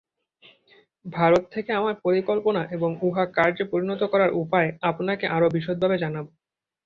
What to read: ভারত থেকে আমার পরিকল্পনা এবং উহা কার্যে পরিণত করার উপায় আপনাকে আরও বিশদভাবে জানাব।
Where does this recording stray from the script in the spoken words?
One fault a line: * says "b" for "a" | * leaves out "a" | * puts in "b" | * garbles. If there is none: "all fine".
all fine